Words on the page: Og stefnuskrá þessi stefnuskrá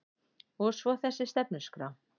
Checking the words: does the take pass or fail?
fail